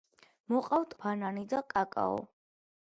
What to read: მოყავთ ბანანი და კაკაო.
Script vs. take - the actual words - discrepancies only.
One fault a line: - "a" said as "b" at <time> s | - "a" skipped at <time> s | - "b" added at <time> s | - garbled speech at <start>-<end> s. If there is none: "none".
none